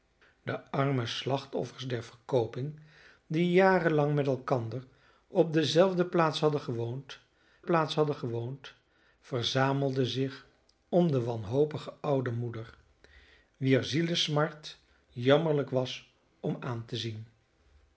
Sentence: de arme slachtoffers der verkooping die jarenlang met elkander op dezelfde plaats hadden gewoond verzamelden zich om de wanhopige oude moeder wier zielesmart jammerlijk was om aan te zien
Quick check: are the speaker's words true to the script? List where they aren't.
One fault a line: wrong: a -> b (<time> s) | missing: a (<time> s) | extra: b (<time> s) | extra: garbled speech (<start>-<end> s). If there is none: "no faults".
extra: plaats hadden gewoond (7.6 s)